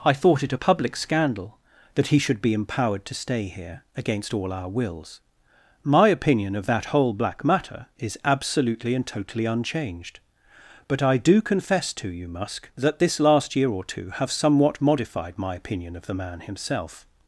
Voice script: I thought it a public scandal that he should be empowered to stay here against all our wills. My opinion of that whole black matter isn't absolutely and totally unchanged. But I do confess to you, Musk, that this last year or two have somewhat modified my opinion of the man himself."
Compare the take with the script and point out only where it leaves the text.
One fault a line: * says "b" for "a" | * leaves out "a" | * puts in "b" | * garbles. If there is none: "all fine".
* says "is" for "isn't"